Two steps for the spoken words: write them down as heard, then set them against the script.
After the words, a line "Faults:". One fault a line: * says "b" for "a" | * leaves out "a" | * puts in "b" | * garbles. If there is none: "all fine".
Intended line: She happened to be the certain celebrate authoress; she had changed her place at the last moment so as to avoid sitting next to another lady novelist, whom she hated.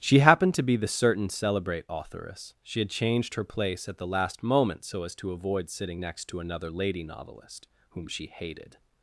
She happened to be the certain celebrate authoress; she had changed her place at the last moment so as to avoid sitting next to another lady novelist, whom she hated.
Faults:
all fine